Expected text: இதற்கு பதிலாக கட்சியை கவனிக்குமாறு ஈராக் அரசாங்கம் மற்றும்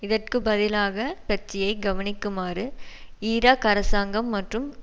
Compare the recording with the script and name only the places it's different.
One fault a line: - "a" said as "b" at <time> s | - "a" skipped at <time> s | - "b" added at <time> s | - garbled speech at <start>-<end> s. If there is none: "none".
none